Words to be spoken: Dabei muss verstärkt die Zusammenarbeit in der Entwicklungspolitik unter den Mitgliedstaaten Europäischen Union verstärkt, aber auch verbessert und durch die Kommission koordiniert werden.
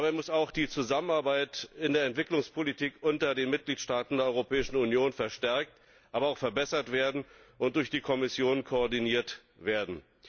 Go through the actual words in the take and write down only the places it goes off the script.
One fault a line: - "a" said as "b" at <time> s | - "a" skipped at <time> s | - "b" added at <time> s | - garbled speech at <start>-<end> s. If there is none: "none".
- "verstärkt" said as "auch" at 0.3 s
- "der" added at 4.2 s